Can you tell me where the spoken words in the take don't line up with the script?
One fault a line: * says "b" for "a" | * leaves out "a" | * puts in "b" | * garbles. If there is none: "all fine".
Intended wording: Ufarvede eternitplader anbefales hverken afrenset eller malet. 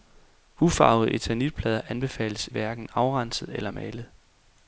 all fine